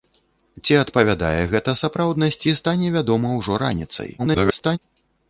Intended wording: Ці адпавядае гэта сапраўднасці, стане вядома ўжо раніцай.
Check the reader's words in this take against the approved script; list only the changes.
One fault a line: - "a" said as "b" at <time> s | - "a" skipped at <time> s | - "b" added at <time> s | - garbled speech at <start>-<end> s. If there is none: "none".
- garbled speech at 4.2-4.8 s